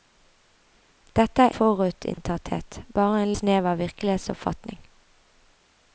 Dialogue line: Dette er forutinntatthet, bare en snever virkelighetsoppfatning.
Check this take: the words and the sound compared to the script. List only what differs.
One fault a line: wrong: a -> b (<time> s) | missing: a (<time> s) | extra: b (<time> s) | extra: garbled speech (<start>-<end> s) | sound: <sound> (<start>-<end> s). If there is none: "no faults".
sound: dropout (2.1-2.2 s)